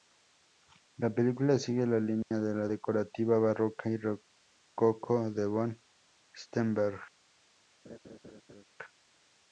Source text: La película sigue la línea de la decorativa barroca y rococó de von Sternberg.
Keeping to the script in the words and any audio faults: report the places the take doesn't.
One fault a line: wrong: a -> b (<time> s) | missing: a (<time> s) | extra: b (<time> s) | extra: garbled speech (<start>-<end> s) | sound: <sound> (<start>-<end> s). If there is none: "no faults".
sound: dropout (2.2-2.3 s)
sound: laugh (7.8-8.6 s)